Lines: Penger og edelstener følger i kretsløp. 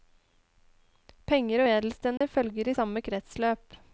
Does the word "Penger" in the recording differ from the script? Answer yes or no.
no